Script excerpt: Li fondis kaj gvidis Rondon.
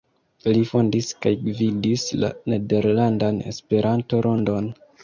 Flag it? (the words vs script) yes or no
yes